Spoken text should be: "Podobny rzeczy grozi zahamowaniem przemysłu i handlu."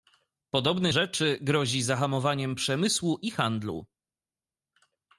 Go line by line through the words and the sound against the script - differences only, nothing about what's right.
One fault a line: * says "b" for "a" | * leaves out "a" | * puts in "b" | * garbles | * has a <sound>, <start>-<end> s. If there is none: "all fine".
all fine